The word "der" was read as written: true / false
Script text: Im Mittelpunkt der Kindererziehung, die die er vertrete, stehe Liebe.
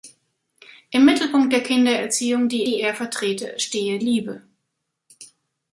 true